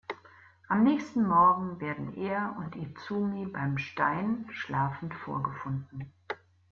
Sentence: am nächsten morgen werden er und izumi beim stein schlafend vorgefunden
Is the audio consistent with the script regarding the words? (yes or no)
yes